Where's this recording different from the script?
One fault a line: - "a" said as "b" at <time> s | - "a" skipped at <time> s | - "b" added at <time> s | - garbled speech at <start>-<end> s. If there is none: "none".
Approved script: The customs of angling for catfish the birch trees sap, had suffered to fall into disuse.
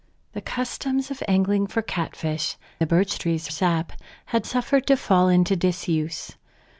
none